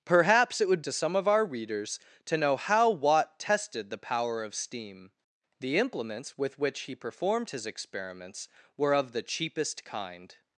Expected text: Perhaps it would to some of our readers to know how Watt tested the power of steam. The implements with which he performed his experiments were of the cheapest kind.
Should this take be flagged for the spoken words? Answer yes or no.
no